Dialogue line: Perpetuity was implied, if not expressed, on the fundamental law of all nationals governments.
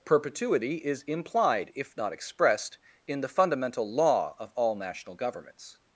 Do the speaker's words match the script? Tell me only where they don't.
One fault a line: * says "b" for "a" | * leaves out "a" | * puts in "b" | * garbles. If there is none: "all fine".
* says "is" for "was"
* says "in" for "on"
* says "national" for "nationals"